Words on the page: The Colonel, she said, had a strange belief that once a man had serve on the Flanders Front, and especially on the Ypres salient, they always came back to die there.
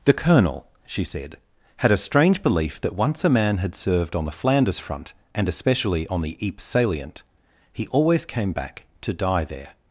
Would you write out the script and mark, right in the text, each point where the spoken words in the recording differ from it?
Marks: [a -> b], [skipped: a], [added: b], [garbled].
The Colonel, she said, had a strange belief that once a man had [serve -> served] on the Flanders Front, and especially on the Ypres salient, [they -> he] always came back to die there.